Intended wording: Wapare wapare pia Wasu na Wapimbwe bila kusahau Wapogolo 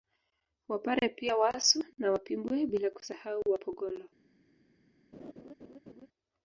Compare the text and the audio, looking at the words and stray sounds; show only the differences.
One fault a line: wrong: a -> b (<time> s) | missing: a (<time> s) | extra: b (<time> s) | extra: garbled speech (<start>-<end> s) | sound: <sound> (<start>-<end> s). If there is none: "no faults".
missing: wapare (1.1 s)
sound: laugh (5.1-6.1 s)